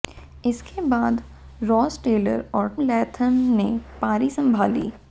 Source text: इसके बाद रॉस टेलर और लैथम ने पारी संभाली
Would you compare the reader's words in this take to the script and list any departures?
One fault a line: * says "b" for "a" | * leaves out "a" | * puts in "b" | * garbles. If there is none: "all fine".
all fine